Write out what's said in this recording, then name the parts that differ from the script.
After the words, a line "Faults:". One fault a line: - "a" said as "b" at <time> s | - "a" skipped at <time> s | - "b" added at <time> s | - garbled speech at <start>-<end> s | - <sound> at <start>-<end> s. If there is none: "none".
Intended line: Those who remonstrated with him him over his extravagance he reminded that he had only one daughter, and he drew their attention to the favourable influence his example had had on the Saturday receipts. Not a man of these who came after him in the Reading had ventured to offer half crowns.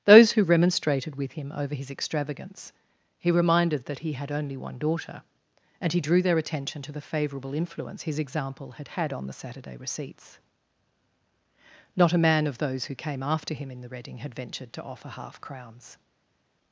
Those who remonstrated with him over his extravagance he reminded that he had only one daughter, and he drew their attention to the favourable influence his example had had on the Saturday receipts. Not a man of those who came after him in the Reading had ventured to offer half crowns.
Faults:
- "him" skipped at 1.5 s
- "these" said as "those" at 12.6 s